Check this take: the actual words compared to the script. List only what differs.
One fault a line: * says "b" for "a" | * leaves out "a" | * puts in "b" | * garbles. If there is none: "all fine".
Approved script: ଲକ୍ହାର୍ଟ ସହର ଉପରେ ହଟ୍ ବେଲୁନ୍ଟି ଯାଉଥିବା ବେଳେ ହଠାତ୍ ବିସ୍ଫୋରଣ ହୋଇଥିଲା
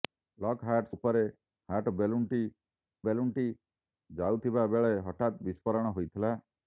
* leaves out "ସହର"
* puts in "ବେଲୁନ୍ଟି"